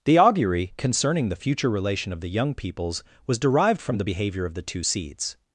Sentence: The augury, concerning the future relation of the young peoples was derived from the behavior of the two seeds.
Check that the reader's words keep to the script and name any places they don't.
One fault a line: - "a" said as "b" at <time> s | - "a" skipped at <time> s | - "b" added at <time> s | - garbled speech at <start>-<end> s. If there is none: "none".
none